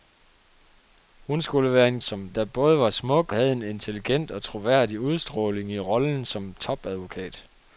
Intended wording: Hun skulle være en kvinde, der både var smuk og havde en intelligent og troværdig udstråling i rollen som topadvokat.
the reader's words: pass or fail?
fail